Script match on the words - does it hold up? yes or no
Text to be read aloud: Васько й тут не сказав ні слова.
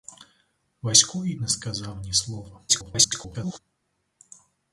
no